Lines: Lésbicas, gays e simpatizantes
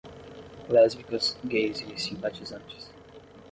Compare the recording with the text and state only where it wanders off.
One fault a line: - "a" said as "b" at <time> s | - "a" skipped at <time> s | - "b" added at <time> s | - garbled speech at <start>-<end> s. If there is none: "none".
none